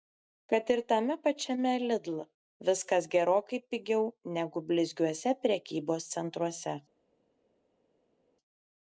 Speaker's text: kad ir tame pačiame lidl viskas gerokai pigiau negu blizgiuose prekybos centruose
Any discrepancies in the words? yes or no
no